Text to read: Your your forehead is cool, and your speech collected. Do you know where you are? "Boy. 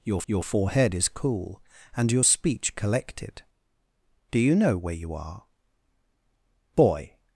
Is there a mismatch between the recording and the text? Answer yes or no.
no